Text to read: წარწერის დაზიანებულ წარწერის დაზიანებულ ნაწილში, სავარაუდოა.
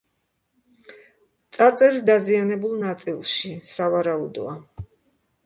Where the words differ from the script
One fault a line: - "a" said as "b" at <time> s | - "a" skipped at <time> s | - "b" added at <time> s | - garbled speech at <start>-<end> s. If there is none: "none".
- "წარწერის დაზიანებულ" skipped at 2.8 s